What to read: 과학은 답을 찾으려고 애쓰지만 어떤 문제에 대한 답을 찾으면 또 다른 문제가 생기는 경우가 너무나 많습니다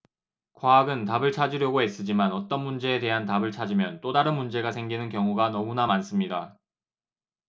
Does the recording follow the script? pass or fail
pass